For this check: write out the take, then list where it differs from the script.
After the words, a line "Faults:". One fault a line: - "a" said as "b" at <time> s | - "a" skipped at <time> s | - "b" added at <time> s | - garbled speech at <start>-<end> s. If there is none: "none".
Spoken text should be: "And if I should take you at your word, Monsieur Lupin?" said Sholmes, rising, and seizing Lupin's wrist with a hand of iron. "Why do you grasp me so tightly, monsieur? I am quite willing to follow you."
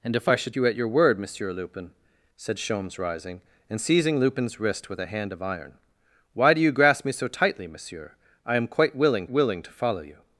"And if I should you at your word, Monsieur Lupin?" said Sholmes, rising, and seizing Lupin's wrist with a hand of iron. "Why do you grasp me so tightly, monsieur? I am quite willing willing to follow you."
Faults:
- "take" skipped at 0.6 s
- "willing" added at 9.3 s